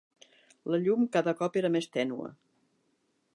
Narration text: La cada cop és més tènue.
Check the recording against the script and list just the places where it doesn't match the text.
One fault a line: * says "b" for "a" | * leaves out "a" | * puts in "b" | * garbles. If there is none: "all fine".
* puts in "llum"
* says "era" for "és"